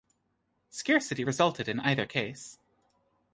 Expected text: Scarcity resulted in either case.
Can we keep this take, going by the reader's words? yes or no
yes